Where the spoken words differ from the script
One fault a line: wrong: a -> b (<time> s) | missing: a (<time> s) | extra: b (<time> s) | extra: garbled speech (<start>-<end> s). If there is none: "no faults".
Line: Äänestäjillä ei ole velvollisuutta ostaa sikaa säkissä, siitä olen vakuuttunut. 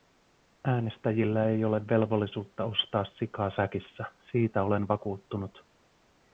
no faults